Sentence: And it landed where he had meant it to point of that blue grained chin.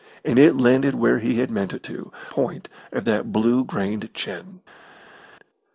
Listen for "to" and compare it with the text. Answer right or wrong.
right